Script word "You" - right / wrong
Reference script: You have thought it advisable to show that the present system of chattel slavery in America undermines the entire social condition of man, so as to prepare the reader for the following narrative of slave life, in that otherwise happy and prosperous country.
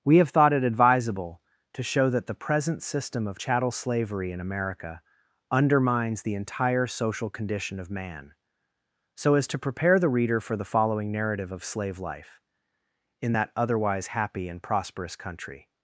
wrong